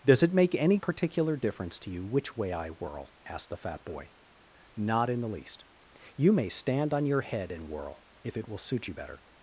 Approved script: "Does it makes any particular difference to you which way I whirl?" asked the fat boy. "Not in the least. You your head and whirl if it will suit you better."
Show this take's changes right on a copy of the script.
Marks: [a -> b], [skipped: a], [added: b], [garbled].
"Does it [makes -> make] any particular difference to you which way I whirl?" asked the fat boy. "Not in the least. You [added: may stand on] your head and whirl if it will suit you better."